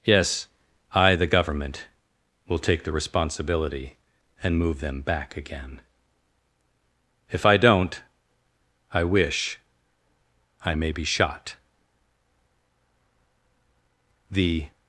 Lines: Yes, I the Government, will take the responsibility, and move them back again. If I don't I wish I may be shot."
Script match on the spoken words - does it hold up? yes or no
no